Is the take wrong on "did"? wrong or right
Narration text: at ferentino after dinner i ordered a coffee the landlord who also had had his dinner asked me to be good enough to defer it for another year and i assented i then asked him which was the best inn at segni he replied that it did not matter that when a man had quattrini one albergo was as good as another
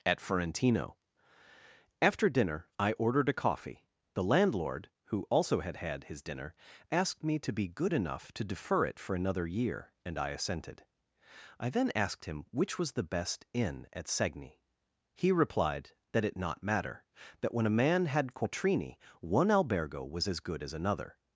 wrong